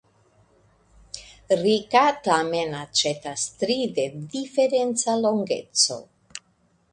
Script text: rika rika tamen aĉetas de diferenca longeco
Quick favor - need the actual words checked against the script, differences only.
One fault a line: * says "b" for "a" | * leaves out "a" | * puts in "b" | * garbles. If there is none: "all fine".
* leaves out "rika"
* puts in "tri"